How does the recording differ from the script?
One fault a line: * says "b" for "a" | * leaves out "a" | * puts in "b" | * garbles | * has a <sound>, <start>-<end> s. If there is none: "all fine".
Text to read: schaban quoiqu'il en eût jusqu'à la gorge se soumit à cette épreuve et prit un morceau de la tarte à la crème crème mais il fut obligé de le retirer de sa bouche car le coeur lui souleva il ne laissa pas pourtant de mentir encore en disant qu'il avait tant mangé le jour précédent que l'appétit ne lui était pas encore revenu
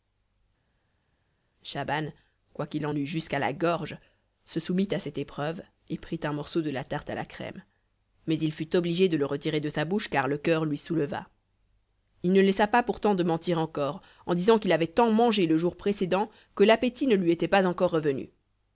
* leaves out "crème"